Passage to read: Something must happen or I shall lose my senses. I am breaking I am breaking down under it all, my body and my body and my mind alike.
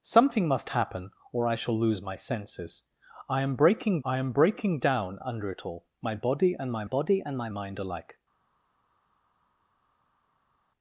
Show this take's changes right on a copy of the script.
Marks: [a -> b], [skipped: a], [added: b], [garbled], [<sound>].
Something must happen or I shall lose my senses. I am breaking I am breaking down under it all, my body and my body and my mind alike.